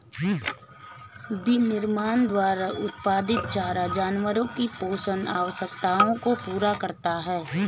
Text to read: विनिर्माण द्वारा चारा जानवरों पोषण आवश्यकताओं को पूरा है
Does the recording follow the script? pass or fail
fail